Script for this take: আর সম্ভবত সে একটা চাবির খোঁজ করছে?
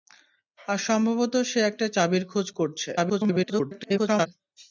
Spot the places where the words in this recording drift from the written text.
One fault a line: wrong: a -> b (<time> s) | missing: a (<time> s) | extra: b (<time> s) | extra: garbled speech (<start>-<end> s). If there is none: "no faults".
extra: garbled speech (3.0-4.3 s)